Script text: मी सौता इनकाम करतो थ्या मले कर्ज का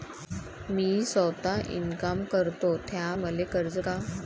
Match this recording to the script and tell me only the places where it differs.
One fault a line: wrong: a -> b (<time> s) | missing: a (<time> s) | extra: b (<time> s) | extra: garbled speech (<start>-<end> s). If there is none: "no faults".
no faults